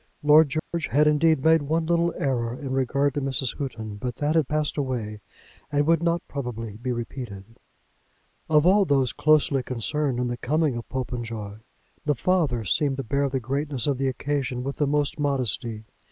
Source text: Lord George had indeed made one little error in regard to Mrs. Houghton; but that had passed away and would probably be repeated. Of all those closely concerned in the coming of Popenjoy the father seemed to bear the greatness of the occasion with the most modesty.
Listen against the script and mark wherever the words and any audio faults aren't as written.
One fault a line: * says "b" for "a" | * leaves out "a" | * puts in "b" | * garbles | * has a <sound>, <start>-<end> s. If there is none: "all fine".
* has a dropout, 0.6-0.7 s
* puts in "not"